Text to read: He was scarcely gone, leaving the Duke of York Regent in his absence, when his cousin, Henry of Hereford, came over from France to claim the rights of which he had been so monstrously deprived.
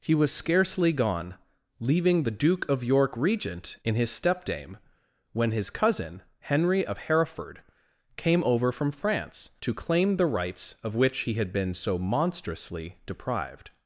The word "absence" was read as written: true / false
false